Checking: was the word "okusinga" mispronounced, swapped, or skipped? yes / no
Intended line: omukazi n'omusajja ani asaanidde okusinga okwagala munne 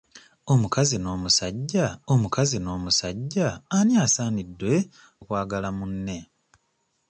yes